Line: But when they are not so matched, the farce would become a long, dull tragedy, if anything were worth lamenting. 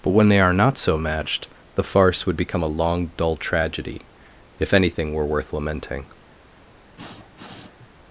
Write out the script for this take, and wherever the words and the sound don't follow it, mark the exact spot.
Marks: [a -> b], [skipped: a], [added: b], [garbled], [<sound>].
But when they are not so matched, the farce would become a long, dull tragedy, if anything were worth lamenting. [sniff]